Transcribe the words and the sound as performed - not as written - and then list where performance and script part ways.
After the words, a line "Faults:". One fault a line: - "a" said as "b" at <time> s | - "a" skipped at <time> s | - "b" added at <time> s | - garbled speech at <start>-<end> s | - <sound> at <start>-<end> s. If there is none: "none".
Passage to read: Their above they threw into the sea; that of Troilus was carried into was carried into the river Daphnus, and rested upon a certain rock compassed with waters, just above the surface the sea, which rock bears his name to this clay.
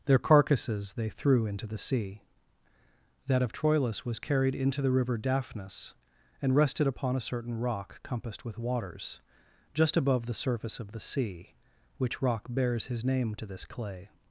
Their carcasses they threw into the sea; that of Troilus was carried into the river Daphnus, and rested upon a certain rock compassed with waters, just above the surface of the sea, which rock bears his name to this clay.
Faults:
- "above" said as "carcasses" at 0.2 s
- "was carried into" skipped at 4.8 s
- "of" added at 10.8 s